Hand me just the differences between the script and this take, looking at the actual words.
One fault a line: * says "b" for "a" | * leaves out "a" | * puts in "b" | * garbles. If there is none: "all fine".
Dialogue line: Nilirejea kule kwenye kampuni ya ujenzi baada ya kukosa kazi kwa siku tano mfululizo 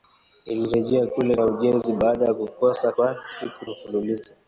* leaves out "kwenye kampuni"
* leaves out "kazi"
* leaves out "tano"